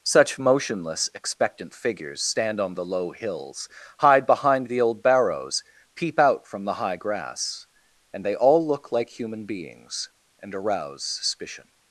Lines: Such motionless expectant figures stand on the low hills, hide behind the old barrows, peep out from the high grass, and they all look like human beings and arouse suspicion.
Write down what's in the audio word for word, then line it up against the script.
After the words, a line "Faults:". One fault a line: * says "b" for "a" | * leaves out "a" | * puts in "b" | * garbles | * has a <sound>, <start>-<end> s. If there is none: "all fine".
Such motionless expectant figures stand on the low hills, hide behind the old barrows, peep out from the high grass, and they all look like human beings and arouse suspicion.
Faults:
all fine